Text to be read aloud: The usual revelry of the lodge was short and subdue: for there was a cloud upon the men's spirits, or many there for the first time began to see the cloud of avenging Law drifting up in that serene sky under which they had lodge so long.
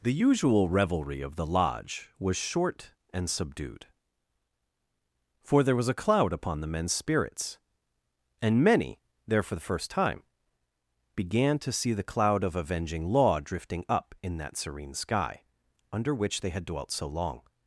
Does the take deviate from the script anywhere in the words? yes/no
yes